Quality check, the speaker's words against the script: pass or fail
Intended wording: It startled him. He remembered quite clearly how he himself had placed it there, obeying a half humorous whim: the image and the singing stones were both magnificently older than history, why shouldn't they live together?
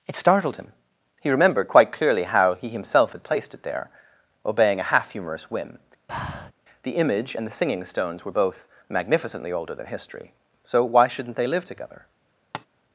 fail